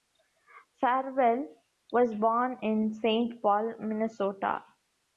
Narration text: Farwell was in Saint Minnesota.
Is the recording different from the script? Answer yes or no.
yes